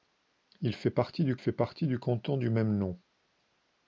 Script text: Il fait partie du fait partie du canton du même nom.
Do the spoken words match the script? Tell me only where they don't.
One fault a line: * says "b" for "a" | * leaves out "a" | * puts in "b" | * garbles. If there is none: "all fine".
all fine